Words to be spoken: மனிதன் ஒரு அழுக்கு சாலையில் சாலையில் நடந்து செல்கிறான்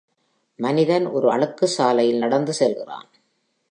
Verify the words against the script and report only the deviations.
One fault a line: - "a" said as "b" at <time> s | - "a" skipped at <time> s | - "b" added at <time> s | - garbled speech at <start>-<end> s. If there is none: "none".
- "சாலையில்" skipped at 2.2 s